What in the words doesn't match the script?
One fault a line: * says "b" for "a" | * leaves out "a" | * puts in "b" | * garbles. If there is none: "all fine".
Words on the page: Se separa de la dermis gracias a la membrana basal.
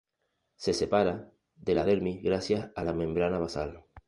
all fine